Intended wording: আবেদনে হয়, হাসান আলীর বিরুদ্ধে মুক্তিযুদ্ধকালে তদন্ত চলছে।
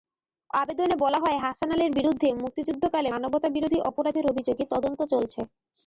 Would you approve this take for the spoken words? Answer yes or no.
no